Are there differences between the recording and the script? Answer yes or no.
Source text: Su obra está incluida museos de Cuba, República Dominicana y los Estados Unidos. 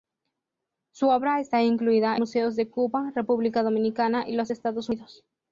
no